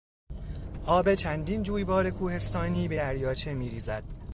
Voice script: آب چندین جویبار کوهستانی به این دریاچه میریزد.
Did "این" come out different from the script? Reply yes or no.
yes